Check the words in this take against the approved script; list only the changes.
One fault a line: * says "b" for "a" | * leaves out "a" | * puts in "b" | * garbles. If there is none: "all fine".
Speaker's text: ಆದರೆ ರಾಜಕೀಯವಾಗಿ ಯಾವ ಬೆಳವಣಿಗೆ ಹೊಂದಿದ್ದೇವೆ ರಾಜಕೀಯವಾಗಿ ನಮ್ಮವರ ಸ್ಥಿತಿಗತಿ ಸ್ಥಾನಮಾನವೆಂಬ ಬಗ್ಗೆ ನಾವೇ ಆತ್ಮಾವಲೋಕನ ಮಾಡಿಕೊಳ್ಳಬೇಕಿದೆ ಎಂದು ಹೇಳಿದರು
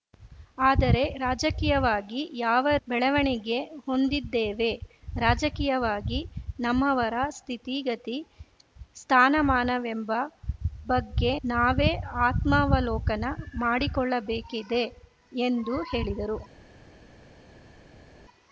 all fine